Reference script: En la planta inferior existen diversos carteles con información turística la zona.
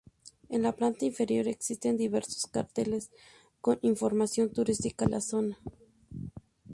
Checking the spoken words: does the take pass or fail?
pass